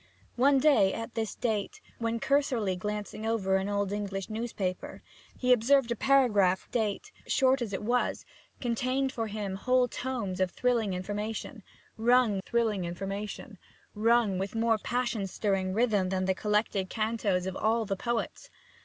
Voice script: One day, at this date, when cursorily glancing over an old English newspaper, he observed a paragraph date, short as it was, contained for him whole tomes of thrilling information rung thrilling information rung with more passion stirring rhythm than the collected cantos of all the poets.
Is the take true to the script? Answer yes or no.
yes